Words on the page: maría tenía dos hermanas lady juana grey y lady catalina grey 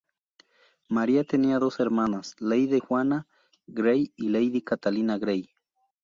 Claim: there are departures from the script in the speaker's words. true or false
false